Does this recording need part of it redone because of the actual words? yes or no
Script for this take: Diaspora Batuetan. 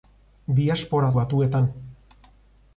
no